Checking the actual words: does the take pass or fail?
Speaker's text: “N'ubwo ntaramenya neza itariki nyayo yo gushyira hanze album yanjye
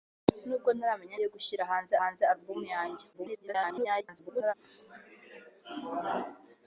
fail